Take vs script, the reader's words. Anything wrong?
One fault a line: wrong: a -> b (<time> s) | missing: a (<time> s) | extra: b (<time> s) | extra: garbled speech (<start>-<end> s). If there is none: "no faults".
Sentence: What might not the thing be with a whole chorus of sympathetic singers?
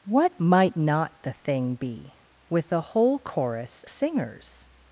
missing: of sympathetic (3.8 s)